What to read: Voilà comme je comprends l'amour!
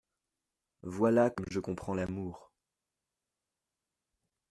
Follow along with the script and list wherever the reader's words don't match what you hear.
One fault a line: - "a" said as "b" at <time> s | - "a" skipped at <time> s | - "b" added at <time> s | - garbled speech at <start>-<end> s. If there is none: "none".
none